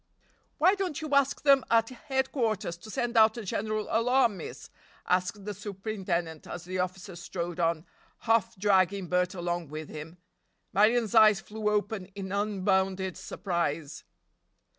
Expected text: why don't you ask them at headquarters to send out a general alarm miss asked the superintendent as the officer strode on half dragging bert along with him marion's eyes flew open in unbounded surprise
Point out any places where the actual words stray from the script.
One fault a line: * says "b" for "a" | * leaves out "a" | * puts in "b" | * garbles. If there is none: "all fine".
all fine